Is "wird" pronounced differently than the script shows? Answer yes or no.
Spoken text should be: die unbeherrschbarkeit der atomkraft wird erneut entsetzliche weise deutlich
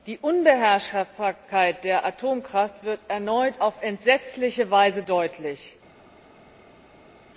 no